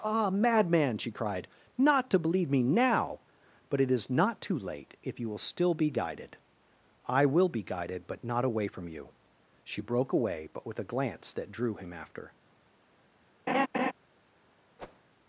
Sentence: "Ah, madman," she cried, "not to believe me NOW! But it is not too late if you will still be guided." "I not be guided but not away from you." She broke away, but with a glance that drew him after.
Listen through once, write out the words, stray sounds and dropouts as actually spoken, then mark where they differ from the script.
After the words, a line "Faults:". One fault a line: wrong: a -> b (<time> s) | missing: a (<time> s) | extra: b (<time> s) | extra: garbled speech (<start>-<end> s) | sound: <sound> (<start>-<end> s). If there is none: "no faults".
"Ah, madman," she cried, "not to believe me NOW! But it is not too late if you will still be guided." "I will be guided but not away from you." She broke away, but with a glance that drew him after.
Faults:
wrong: not -> will (7.3 s)
sound: laugh (13.5-13.9 s)
sound: whoosh (14.8-15.0 s)